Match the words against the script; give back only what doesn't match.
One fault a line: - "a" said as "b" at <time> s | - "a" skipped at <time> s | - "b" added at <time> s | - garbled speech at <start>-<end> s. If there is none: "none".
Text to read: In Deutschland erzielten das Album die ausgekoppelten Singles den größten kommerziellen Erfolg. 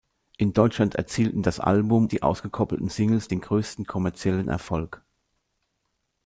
none